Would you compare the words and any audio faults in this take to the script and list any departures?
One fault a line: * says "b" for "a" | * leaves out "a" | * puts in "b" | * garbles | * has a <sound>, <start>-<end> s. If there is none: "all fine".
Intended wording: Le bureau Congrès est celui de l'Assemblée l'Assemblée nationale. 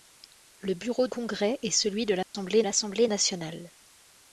* has a dropout, 2.2-2.3 s